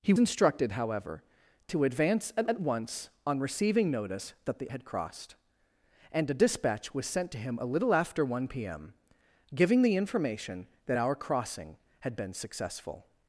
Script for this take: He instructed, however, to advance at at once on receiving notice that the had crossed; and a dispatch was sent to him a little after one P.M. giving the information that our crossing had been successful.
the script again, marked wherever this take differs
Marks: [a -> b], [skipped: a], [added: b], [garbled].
He instructed, however, to advance at at once on receiving notice that the had crossed; and a dispatch was sent to him a little after one P.M. giving the information that our crossing had been successful.